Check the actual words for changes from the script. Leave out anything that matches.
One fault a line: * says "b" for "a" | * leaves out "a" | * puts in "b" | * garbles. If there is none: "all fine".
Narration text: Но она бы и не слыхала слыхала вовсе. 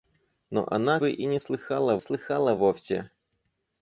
all fine